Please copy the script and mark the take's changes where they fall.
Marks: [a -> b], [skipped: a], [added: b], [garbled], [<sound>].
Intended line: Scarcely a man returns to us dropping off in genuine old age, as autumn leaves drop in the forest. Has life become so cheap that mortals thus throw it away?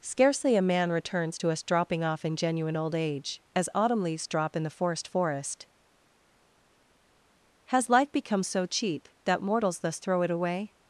Scarcely a man returns to us dropping off in genuine old age, as autumn leaves drop in the forest. [added: forest] Has life become so cheap that mortals thus throw it away?